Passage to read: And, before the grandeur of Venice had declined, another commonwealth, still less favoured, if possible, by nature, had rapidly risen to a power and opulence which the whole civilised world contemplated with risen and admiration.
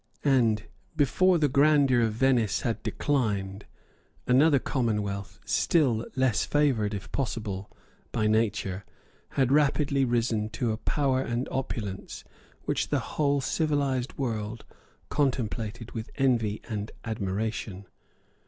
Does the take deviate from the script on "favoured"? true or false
false